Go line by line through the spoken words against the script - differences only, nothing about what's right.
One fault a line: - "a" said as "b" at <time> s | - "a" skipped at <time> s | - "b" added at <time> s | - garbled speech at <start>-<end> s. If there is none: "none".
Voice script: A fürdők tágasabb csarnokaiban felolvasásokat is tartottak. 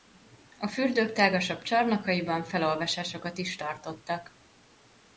none